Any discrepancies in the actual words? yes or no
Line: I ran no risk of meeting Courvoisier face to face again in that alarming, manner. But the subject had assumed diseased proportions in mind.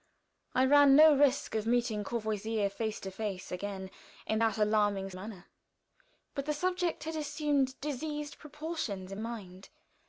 no